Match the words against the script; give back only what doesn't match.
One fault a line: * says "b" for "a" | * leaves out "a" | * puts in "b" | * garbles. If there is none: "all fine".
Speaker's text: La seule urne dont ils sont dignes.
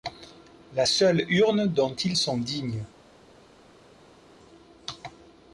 all fine